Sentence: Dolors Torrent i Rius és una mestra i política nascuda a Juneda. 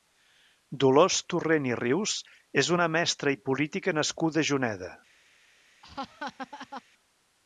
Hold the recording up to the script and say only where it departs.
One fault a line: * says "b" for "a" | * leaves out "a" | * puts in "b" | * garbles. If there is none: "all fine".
all fine